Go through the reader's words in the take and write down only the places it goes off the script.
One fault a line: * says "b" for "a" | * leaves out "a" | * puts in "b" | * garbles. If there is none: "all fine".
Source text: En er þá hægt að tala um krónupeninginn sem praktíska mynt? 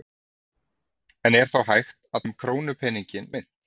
* leaves out "tala"
* leaves out "sem praktíska"